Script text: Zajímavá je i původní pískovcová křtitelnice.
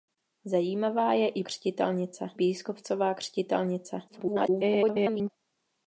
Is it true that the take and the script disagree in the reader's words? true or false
true